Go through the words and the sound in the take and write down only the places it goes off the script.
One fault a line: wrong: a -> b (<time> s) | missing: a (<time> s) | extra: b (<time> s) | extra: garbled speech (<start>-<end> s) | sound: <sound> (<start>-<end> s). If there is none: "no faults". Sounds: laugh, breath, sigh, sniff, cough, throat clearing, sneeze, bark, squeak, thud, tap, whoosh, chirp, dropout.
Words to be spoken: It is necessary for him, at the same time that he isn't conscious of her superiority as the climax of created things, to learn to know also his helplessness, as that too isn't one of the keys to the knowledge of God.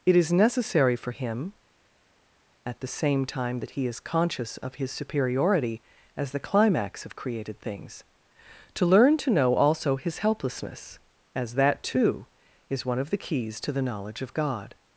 wrong: isn't -> is (3.9 s)
wrong: her -> his (4.8 s)
wrong: isn't -> is (12.7 s)